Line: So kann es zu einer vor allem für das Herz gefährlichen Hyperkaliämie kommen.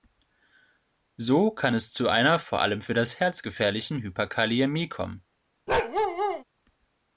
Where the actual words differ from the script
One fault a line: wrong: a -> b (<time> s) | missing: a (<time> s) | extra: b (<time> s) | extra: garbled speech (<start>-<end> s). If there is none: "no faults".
no faults